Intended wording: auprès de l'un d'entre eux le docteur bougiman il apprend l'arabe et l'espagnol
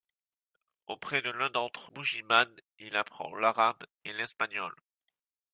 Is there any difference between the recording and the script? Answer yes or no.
yes